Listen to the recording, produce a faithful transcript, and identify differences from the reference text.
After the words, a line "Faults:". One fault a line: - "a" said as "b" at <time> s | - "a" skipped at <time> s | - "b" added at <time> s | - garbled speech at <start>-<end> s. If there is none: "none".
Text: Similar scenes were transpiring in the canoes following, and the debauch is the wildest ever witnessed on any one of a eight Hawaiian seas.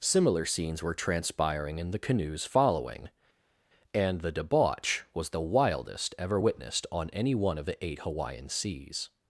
Similar scenes were transpiring in the canoes following, and the debauch was the wildest ever witnessed on any one of the eight Hawaiian seas.
Faults:
- "is" said as "was" at 5.1 s
- "a" said as "the" at 7.6 s